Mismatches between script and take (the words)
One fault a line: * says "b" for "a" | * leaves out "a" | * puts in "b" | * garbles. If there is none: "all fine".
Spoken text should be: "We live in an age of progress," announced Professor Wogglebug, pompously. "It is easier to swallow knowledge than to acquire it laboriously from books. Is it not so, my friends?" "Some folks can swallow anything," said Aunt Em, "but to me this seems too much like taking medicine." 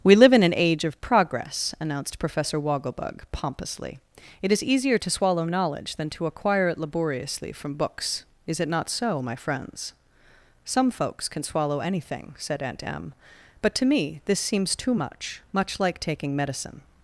* puts in "much"